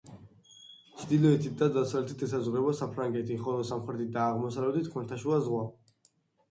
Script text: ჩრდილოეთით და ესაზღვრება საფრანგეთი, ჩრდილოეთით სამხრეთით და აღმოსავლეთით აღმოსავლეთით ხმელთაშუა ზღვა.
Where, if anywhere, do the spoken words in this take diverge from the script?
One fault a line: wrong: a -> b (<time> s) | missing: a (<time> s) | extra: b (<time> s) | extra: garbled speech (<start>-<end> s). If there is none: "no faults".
extra: დასავლეთით (1.8 s)
wrong: ჩრდილოეთით -> ხოლო (3.5 s)
missing: აღმოსავლეთით (4.9 s)